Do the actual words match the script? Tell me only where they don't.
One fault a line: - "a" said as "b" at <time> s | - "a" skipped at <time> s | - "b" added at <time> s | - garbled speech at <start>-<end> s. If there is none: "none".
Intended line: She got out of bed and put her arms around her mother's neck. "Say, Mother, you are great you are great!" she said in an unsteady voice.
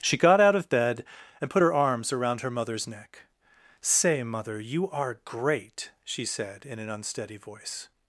- "you are great" skipped at 5.9 s